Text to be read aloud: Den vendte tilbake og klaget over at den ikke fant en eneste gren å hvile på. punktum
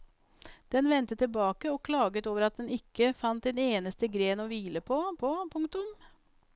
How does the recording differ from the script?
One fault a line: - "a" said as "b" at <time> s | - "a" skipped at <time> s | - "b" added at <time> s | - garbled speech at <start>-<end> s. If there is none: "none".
- "på" added at 5.1 s